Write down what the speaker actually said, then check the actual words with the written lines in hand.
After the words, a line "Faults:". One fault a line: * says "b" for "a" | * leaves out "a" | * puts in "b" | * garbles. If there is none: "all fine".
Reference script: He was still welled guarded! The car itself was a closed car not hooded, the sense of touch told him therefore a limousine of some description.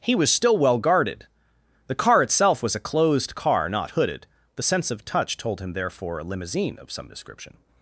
He was still well guarded! The car itself was a closed car not hooded, the sense of touch told him therefore a limousine of some description.
Faults:
* says "well" for "welled"